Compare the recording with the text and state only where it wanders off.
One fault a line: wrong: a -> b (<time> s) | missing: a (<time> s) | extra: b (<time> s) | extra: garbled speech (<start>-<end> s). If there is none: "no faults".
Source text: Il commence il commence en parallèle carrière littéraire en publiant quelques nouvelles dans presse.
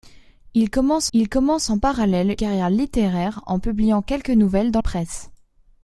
no faults